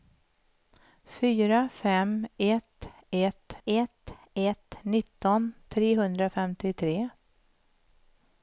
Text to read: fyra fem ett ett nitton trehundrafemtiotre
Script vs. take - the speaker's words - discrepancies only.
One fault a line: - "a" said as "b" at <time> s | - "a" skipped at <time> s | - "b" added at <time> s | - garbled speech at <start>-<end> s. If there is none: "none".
- "ett ett" added at 3.6 s